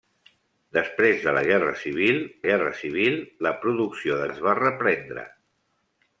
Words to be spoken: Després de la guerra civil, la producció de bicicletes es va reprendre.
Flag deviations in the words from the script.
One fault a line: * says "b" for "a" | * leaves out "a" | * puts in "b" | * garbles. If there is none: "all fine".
* puts in "guerra civil"
* leaves out "bicicletes"